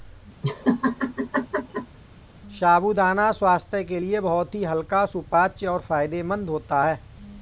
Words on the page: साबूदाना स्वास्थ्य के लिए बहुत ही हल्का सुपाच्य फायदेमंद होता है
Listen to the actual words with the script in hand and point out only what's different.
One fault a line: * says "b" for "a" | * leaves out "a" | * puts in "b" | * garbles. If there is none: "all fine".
* puts in "और"